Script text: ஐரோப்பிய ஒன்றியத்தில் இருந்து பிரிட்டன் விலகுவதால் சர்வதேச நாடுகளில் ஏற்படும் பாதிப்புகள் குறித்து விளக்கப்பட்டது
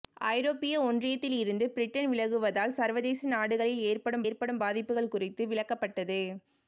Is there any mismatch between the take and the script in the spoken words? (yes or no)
yes